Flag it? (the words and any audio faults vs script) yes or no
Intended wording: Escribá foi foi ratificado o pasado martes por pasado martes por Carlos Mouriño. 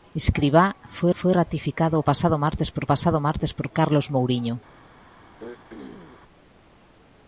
yes